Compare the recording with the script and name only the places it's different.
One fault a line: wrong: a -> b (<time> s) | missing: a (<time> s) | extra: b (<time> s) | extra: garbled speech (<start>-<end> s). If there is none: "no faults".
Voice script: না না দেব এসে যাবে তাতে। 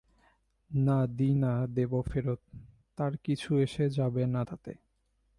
extra: দিই (1.2 s)
extra: ফেরত তার কিছু (2.0 s)
extra: না (4.3 s)